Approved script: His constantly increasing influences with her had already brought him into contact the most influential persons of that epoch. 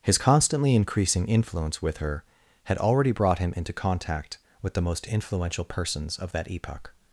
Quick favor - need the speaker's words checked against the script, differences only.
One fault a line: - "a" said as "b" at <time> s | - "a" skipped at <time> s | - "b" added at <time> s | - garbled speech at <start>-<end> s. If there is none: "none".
- "influences" said as "influence" at 1.3 s
- "with" added at 4.6 s